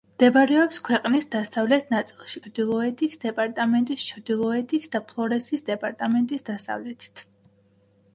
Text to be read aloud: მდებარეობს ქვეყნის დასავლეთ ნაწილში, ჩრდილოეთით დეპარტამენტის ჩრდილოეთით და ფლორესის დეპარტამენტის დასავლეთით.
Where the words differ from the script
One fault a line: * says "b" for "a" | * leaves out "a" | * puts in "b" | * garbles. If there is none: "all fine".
all fine